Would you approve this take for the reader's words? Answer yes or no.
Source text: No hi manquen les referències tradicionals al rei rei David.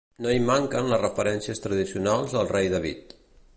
no